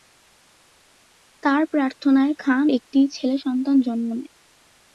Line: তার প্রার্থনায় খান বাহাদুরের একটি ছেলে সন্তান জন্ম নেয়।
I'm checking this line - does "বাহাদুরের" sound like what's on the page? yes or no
no